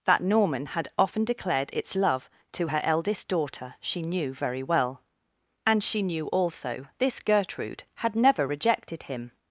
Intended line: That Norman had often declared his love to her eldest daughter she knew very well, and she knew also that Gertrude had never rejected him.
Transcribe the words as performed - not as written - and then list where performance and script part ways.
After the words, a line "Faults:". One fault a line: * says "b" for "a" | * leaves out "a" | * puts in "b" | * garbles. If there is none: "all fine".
That Norman had often declared its love to her eldest daughter she knew very well, and she knew also this Gertrude had never rejected him.
Faults:
* says "its" for "his"
* says "this" for "that"